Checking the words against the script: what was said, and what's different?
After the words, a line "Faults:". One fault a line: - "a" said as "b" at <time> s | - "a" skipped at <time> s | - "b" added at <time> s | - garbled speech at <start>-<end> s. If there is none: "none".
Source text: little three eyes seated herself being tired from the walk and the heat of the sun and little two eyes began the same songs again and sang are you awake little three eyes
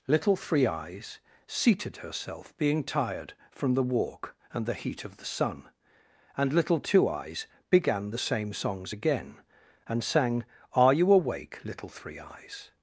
little three eyes seated herself being tired from the walk and the heat of the sun and little two eyes began the same songs again and sang are you awake little three eyes
Faults:
none